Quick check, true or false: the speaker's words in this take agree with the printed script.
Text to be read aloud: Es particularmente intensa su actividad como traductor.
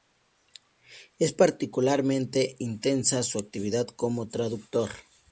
true